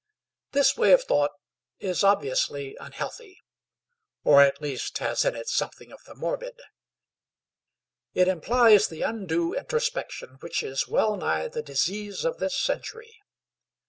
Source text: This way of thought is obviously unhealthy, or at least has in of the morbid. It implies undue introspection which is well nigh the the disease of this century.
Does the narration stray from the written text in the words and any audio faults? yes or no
yes